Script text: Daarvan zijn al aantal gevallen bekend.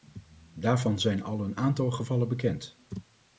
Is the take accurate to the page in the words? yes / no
no